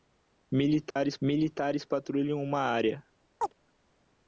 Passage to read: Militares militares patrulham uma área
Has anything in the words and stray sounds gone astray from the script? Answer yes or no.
yes